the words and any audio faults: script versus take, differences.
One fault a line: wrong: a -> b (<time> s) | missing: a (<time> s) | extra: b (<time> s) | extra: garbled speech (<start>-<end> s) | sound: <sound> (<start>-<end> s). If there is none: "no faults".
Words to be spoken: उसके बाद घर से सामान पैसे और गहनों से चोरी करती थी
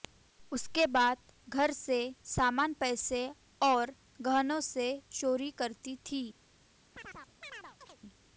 sound: chirp (6.9-8.0 s)